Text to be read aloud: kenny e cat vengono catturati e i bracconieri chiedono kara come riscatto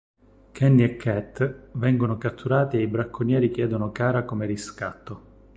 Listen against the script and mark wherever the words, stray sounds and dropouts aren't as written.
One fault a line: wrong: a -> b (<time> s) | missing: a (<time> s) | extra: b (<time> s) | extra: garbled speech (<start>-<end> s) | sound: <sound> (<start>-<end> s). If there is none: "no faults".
no faults